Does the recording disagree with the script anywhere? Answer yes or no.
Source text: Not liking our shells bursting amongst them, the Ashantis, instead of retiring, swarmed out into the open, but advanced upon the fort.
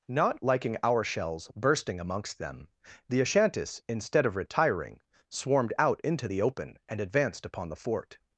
yes